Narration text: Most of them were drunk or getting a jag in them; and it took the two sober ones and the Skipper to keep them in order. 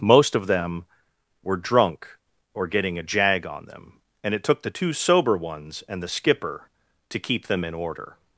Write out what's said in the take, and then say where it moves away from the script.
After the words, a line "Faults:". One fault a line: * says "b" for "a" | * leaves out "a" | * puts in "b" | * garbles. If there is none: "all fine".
Most of them were drunk or getting a jag on them; and it took the two sober ones and the Skipper to keep them in order.
Faults:
* says "on" for "in"